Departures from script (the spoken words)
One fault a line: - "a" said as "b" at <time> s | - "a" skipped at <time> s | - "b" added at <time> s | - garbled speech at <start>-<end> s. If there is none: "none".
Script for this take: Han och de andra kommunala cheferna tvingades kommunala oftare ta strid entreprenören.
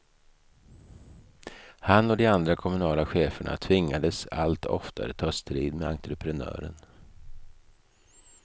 - "kommunala" said as "allt" at 4.3 s
- "med" added at 5.7 s